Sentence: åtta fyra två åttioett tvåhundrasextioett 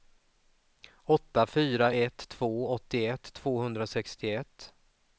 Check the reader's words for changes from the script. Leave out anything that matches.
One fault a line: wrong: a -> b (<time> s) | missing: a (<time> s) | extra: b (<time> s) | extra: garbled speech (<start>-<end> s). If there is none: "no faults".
extra: ett (1.9 s)